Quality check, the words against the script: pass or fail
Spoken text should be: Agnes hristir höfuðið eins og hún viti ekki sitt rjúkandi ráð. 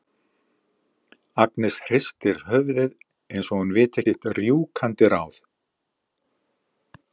fail